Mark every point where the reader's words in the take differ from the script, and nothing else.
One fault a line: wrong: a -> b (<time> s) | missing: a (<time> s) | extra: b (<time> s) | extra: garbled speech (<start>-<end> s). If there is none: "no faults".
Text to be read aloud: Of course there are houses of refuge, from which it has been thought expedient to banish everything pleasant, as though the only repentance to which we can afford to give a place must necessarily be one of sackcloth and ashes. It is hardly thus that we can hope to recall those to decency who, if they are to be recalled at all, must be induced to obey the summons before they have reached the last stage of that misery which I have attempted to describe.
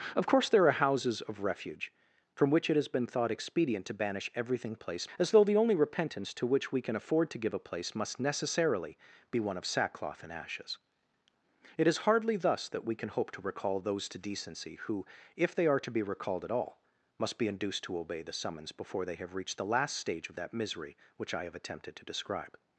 wrong: pleasant -> place (4.7 s)